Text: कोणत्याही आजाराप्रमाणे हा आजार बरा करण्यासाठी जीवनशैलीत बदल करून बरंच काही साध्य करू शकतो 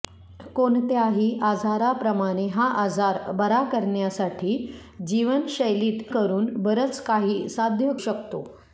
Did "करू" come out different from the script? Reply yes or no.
yes